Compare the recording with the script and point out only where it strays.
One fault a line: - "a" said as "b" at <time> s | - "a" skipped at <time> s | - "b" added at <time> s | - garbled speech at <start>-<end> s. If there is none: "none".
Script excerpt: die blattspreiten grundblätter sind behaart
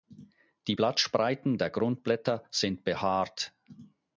- "der" added at 1.6 s